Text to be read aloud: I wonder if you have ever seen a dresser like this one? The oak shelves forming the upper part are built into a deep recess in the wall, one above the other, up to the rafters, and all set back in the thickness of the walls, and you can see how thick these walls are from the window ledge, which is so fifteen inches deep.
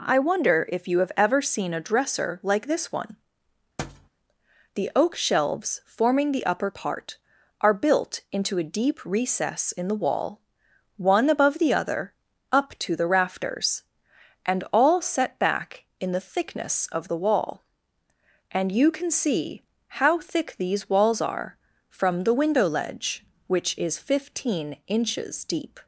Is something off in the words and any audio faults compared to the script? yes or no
yes